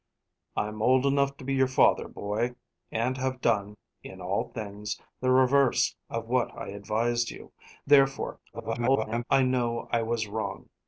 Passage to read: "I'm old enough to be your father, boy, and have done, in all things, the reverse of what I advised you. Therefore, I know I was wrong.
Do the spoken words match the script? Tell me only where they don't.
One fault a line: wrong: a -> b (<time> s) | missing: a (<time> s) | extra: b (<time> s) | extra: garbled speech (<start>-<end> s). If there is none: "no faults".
extra: garbled speech (8.5-9.2 s)